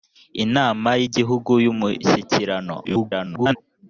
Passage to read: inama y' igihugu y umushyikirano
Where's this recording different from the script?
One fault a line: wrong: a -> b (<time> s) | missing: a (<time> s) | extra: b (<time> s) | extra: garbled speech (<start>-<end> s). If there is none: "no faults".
extra: garbled speech (2.8-3.6 s)